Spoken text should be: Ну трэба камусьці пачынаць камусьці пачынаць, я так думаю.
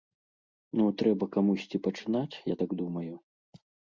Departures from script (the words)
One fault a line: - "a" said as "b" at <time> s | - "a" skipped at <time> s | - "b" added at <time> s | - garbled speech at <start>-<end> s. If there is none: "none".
- "камусьці пачынаць" skipped at 2.4 s